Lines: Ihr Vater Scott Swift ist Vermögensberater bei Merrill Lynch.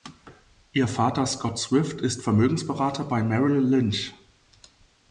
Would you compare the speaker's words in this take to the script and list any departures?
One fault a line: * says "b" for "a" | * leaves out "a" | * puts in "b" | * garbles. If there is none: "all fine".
all fine